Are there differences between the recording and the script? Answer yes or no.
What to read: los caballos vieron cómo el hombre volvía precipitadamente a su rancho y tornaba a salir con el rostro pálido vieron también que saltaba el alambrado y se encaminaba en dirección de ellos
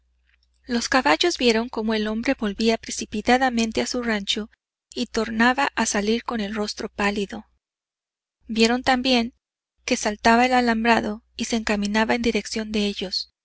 no